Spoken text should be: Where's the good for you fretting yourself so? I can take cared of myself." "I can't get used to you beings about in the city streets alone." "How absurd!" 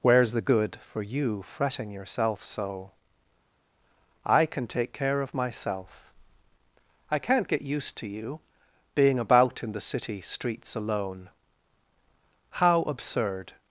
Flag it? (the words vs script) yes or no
yes